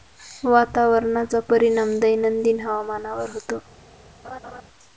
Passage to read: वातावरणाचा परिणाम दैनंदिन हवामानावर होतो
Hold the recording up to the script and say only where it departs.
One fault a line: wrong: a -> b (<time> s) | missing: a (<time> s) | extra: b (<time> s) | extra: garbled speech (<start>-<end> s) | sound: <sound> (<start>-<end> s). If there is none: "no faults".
sound: laugh (4.2-4.6 s)